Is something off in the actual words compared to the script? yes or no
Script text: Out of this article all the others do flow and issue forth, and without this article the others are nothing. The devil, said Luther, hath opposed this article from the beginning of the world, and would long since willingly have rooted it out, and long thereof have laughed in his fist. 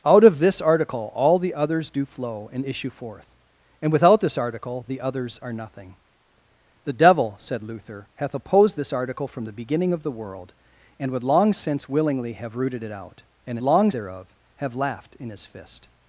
no